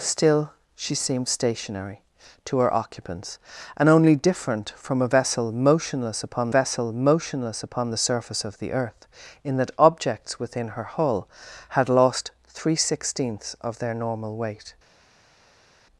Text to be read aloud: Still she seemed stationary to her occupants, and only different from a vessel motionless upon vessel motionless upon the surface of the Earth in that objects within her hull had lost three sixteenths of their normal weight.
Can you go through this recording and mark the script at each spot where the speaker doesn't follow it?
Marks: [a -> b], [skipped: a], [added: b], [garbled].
Still she seemed stationary to her occupants, and only different from a vessel motionless upon vessel motionless upon the surface of the Earth in that objects within her hull had lost three sixteenths of their normal weight.